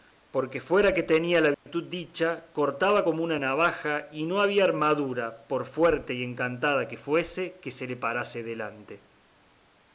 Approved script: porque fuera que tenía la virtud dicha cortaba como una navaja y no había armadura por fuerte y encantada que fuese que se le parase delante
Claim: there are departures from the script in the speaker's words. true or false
false